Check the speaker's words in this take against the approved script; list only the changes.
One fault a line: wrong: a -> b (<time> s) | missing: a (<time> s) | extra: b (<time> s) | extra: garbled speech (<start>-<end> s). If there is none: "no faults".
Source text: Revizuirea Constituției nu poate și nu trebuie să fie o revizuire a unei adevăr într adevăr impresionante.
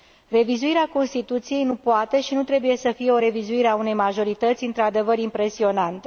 wrong: adevăr -> majorități (3.9 s)